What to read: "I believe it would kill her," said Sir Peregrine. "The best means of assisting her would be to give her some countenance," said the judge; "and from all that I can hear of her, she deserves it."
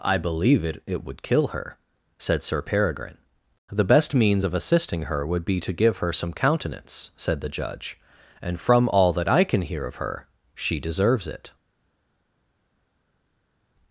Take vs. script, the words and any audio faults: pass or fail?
fail